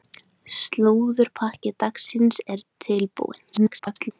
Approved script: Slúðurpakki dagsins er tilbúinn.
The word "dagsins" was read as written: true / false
true